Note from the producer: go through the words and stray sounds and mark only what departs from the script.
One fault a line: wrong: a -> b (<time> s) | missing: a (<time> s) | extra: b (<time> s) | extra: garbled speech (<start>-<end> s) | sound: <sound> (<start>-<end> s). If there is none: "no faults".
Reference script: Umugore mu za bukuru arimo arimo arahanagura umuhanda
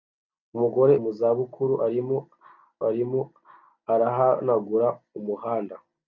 no faults